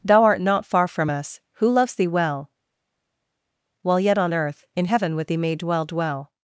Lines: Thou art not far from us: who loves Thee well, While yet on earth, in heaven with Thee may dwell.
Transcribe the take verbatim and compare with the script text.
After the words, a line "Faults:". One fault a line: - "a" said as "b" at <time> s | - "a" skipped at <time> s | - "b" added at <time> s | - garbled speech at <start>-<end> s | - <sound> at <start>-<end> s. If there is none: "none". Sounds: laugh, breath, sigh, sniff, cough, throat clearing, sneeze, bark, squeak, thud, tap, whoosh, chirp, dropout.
Thou art not far from us: who loves Thee well, While yet on earth, in heaven with Thee may dwell dwell.
Faults:
- "dwell" added at 5.9 s